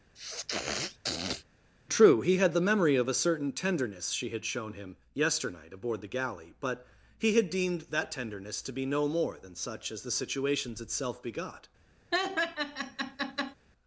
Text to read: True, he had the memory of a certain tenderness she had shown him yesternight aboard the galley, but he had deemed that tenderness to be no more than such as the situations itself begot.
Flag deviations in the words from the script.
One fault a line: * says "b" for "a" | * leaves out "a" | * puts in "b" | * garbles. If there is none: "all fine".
all fine